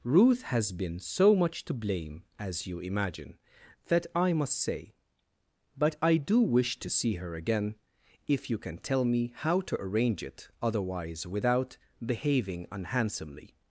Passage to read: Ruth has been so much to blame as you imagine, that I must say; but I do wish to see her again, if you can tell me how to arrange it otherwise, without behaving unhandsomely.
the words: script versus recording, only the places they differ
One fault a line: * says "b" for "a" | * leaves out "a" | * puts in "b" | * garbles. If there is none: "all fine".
all fine